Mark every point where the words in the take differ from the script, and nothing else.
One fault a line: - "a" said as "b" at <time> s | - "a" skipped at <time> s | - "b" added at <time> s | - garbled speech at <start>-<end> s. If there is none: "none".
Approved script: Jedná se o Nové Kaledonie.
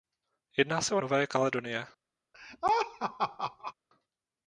none